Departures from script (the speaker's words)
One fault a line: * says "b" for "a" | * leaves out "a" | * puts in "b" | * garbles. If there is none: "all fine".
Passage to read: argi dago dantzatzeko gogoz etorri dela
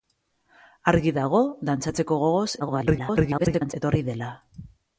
* garbles